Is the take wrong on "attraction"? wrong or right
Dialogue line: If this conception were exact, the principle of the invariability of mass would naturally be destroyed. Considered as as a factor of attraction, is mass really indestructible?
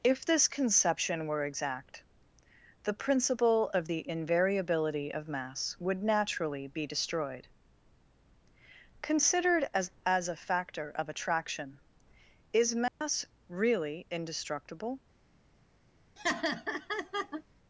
right